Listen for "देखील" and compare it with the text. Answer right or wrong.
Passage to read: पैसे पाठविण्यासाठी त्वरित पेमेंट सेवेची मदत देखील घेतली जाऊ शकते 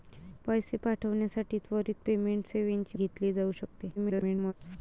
wrong